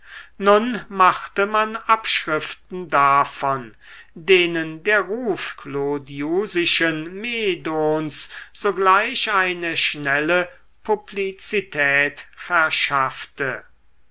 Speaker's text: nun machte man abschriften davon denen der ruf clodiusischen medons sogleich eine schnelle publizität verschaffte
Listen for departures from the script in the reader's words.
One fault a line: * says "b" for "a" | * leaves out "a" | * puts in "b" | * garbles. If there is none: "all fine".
all fine